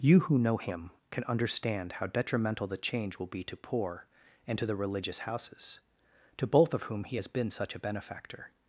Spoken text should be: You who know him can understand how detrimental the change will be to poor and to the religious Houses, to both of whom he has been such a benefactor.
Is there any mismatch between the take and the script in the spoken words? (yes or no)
no